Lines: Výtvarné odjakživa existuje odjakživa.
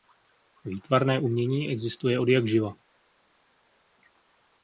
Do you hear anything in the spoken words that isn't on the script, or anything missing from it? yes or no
yes